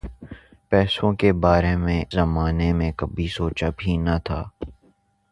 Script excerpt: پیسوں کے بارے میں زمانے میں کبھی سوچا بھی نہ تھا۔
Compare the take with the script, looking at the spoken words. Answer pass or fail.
pass